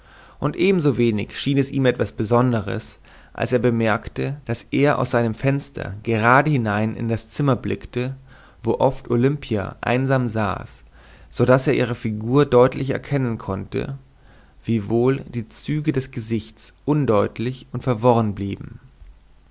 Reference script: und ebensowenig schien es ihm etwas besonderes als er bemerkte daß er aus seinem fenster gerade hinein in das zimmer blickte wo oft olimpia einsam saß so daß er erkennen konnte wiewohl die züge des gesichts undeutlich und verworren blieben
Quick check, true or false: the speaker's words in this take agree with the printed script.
false